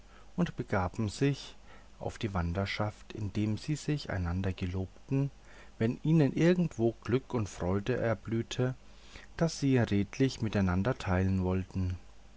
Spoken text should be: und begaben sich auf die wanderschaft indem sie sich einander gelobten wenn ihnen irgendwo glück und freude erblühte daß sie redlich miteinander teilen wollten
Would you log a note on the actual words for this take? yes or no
no